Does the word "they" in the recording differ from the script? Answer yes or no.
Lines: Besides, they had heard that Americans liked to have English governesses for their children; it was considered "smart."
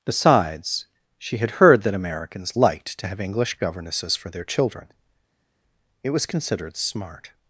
yes